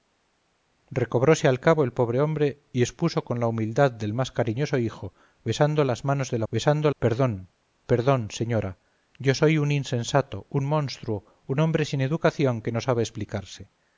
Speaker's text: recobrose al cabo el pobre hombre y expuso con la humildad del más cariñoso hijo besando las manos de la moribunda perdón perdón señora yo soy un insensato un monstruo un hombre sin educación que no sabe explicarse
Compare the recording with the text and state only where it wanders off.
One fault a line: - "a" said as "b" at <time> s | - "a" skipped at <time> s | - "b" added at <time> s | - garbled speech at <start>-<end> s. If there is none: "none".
- "moribunda" said as "besando" at 6.5 s